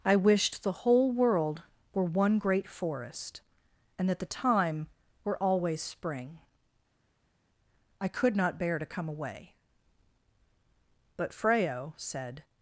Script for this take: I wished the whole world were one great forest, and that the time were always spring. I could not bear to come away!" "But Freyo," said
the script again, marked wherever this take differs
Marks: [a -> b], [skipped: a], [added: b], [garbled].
I wished the whole world were one great forest, and that the time were always spring. I could not bear to come away!" "But Freyo," said